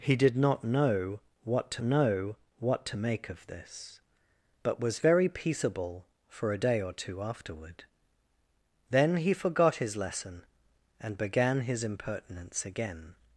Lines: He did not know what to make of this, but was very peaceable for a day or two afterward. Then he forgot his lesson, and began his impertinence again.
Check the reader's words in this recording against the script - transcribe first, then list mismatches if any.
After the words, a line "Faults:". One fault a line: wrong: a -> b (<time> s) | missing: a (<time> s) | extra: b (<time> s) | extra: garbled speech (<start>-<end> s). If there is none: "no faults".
He did not know what to know what to make of this, but was very peaceable for a day or two afterward. Then he forgot his lesson, and began his impertinence again.
Faults:
extra: know what to (1.8 s)